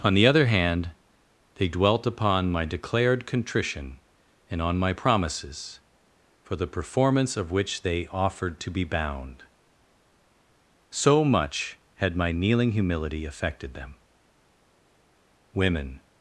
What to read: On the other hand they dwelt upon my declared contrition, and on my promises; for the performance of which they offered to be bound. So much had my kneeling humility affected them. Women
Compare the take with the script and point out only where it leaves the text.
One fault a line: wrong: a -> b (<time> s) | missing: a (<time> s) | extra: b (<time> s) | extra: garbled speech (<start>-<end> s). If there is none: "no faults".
no faults